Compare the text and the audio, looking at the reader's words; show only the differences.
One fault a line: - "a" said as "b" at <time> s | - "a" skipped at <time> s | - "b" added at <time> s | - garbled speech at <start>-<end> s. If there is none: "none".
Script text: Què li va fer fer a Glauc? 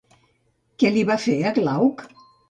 - "fer" skipped at 1.4 s